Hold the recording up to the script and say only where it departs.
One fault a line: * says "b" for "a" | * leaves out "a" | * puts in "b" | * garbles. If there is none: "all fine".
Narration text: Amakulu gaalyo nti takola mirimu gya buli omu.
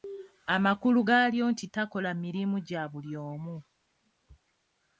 all fine